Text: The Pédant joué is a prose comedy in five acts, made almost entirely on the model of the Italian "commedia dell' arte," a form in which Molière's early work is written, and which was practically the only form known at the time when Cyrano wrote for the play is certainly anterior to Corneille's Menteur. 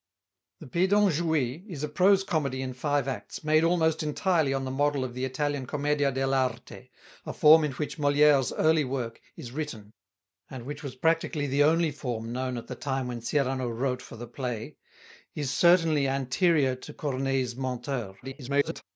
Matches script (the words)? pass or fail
fail